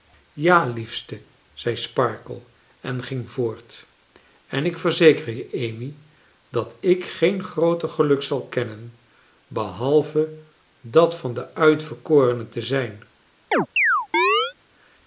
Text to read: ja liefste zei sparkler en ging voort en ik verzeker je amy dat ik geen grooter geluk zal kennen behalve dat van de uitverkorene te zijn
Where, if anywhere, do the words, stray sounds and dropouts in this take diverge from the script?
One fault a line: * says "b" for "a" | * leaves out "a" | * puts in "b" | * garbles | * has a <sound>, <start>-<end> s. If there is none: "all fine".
* has a chirp, 13.5-14.5 s